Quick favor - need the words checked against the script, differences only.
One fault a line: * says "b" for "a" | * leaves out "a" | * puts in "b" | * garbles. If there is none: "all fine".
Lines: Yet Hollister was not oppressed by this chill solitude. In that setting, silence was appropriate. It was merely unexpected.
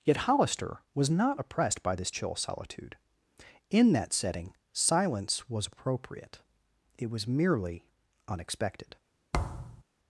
all fine